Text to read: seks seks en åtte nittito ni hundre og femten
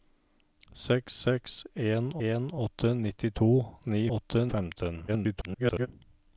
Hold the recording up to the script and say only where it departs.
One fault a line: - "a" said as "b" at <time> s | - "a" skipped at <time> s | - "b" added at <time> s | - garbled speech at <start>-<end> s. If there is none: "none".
- "en" added at 2.3 s
- "hundre" said as "åtte" at 4.2 s
- garbled speech at 5.1-5.9 s